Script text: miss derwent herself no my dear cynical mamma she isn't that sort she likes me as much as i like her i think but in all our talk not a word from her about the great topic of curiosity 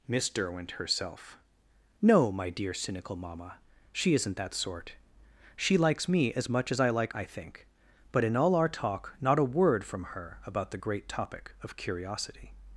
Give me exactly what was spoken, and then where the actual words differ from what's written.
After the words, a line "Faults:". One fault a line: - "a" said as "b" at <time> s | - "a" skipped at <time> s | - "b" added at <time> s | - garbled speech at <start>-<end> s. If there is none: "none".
miss derwent herself no my dear cynical mamma she isn't that sort she likes me as much as i like i think but in all our talk not a word from her about the great topic of curiosity
Faults:
- "her" skipped at 7.1 s